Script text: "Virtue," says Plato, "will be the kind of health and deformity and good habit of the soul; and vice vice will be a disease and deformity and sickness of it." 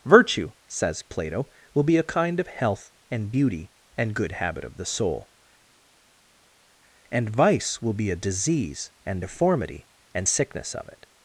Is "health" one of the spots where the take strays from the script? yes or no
no